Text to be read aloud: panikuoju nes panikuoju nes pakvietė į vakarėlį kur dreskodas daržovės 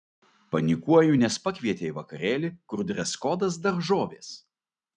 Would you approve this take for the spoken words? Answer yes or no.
no